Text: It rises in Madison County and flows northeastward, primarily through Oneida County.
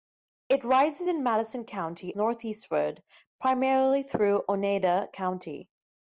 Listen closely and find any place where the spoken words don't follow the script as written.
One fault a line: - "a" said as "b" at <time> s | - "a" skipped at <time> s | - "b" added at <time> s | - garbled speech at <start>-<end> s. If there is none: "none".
- "and flows" skipped at 2.2 s